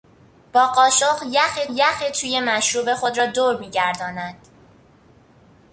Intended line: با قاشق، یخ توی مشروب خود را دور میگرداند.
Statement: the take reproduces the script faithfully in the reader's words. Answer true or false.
false